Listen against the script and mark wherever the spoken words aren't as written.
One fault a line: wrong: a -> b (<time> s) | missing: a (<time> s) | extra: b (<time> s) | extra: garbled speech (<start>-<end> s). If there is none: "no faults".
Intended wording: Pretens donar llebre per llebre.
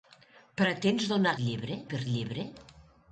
no faults